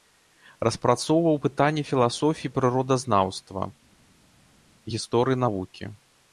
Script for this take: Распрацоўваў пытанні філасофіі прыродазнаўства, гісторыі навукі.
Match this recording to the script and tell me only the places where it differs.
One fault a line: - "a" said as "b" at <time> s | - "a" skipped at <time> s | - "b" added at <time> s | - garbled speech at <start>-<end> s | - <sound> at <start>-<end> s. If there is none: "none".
none